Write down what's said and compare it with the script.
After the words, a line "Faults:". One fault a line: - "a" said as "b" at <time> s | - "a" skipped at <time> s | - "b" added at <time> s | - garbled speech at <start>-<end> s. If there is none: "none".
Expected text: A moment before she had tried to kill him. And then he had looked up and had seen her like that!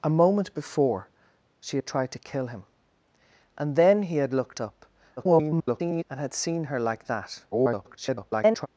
A moment before she had tried to kill him. And then he had looked up [garbled] and had seen her like that! [garbled]
Faults:
- garbled speech at 5.2-6.0 s
- garbled speech at 7.5-8.7 s